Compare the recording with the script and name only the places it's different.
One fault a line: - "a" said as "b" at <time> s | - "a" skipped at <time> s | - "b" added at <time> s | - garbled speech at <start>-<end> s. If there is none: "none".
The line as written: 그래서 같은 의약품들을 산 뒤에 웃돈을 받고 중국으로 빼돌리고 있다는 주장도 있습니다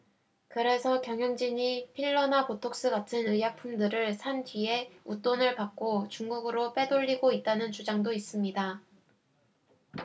- "경영진이 필러나 보톡스" added at 1.0 s